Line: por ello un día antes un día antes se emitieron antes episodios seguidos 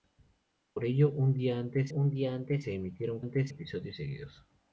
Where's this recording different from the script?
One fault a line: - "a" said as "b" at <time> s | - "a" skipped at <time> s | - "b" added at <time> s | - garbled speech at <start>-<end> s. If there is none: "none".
none